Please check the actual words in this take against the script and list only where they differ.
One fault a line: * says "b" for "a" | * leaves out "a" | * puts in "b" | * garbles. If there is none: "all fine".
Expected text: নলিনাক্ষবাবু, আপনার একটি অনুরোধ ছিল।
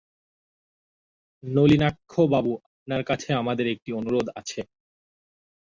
* puts in "কাছে আমাদের"
* says "আছে" for "ছিল"